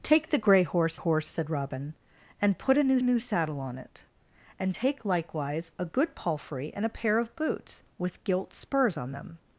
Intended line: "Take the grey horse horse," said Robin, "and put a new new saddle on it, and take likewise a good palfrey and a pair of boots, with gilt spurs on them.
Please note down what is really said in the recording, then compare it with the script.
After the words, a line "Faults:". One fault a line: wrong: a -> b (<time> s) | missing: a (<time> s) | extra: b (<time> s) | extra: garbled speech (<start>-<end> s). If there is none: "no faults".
"Take the grey horse horse," said Robin, "and put a new new saddle on it, and take likewise a good palfrey and a pair of boots, with gilt spurs on them.
Faults:
no faults